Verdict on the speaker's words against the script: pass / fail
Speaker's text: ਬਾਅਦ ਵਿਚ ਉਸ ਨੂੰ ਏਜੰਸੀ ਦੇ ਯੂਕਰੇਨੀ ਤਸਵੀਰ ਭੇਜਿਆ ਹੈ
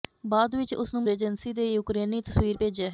pass